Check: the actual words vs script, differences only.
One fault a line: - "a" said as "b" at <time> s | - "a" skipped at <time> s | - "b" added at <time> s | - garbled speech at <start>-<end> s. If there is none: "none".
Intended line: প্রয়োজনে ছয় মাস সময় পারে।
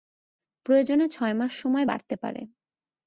- "বাড়তে" added at 1.8 s